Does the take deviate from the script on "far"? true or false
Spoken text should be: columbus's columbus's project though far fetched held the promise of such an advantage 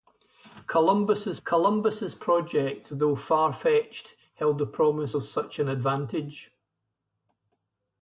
false